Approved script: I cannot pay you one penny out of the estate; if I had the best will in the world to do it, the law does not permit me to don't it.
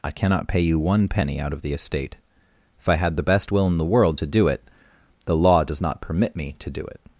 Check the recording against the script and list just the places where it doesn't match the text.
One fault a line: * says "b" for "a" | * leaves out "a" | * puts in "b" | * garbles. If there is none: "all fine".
* says "do" for "don't"